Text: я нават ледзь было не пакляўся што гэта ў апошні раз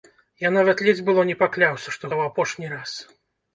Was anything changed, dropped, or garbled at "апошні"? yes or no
no